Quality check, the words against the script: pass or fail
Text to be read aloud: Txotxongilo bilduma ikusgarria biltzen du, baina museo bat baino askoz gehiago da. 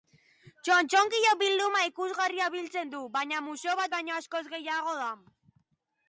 pass